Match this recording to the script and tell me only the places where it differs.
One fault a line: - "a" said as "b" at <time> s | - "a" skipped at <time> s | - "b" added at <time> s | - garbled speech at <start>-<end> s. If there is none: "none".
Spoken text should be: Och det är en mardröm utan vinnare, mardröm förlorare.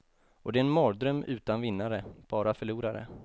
- "mardröm" said as "bara" at 2.3 s